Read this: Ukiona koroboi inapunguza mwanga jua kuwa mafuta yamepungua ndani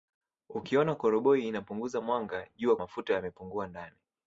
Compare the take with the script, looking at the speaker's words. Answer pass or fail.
fail